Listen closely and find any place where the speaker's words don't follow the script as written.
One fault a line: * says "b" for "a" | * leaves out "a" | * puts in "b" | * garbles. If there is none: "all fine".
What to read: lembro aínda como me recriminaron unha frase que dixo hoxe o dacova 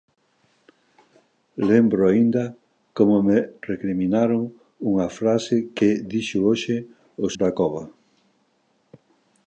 all fine